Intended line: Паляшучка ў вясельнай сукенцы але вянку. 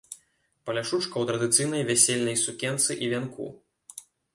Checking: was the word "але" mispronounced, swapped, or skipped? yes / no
yes